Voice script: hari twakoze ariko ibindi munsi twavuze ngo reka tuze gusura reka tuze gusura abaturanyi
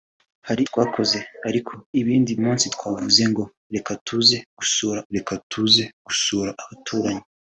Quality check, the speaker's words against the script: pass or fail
pass